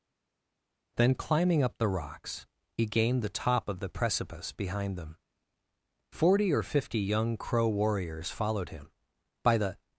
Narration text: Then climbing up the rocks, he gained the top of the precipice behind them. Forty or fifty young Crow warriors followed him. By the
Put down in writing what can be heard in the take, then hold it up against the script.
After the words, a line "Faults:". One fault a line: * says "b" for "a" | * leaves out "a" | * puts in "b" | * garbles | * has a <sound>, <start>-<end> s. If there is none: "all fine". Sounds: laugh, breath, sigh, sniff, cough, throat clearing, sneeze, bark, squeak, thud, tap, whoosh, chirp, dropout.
Then climbing up the rocks, he gained the top of the precipice behind them. Forty or fifty young Crow warriors followed him. By the
Faults:
all fine